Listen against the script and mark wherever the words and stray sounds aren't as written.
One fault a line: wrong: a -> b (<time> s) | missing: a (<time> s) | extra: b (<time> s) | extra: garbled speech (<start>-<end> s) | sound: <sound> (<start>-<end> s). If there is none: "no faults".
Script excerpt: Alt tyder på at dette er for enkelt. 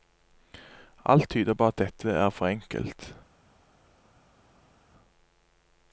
no faults